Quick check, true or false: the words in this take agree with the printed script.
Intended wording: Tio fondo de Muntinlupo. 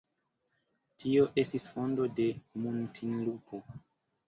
false